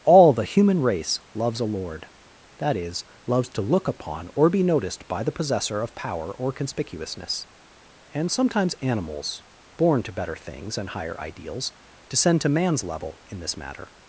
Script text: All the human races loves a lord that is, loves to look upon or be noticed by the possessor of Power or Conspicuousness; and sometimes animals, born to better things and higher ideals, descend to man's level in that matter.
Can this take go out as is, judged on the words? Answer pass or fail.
fail